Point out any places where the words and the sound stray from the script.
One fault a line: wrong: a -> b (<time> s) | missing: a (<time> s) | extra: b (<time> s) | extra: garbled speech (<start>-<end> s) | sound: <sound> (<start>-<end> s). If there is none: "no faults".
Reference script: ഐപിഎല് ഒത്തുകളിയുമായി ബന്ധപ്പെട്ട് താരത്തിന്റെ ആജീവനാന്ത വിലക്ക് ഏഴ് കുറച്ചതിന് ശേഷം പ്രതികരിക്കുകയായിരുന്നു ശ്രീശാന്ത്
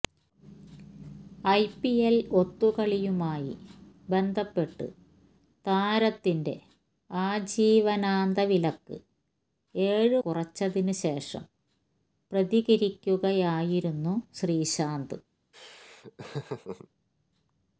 sound: laugh (15.5-16.9 s)